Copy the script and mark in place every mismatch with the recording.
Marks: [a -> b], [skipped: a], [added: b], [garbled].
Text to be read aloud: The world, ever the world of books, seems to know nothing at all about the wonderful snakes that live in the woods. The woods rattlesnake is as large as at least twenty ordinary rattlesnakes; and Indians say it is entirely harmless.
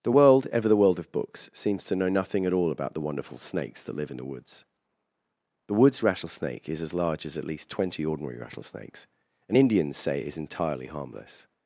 The world, ever the world of books, seems to know nothing at all about the wonderful snakes that live in the woods. The woods rattlesnake is as large as at least twenty ordinary rattlesnakes; and Indians say it is entirely harmless.